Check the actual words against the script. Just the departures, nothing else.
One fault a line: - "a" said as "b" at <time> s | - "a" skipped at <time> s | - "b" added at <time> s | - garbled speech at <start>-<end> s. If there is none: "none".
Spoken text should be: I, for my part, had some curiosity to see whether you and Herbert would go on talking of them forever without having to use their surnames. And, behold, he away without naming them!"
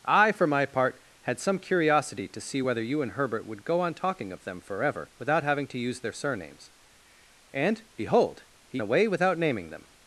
none